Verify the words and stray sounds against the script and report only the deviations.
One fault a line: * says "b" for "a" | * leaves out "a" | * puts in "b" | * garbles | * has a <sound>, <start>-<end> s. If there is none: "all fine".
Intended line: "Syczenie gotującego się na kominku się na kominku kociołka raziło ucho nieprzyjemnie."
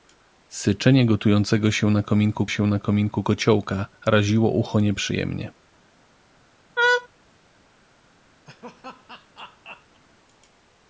* has a laugh, 6.8-7.1 s
* has a laugh, 8.5-10.0 s